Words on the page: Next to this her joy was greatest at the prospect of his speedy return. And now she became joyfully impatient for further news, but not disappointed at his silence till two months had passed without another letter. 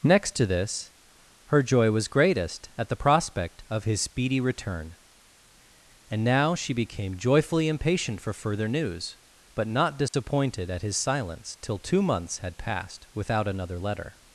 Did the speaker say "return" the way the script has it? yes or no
yes